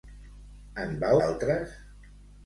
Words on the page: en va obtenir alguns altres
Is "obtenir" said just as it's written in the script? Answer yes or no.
no